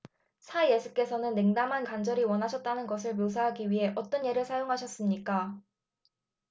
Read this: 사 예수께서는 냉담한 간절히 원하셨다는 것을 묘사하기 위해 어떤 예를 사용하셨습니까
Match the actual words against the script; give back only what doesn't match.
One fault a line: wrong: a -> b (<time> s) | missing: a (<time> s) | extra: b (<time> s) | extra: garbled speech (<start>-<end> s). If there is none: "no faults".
no faults